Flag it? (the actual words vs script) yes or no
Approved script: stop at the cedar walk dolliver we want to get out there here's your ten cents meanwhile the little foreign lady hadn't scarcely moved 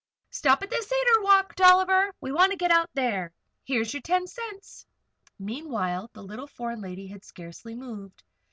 yes